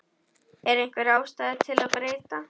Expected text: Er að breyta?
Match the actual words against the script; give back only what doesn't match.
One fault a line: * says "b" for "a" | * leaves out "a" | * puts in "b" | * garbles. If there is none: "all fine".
* puts in "einhver ástæða til"